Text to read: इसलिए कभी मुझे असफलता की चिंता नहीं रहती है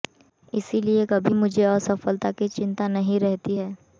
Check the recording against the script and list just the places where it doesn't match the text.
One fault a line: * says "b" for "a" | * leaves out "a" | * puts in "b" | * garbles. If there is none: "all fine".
all fine